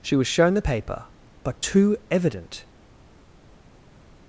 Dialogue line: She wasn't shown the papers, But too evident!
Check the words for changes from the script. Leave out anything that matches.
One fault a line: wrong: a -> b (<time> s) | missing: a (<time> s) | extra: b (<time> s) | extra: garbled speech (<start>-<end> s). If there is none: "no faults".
wrong: wasn't -> was (0.1 s)
wrong: papers -> paper (0.6 s)